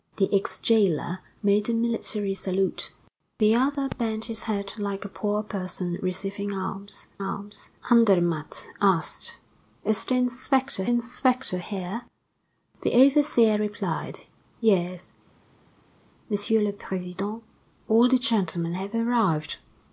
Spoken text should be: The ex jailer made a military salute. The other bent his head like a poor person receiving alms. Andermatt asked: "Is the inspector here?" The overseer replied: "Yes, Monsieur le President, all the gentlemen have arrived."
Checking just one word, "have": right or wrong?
right